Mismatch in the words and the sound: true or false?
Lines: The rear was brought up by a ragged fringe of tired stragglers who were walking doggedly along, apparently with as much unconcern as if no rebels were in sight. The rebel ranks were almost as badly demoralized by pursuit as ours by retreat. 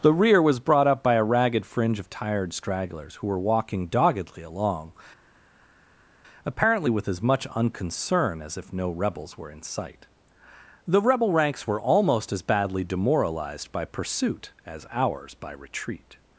false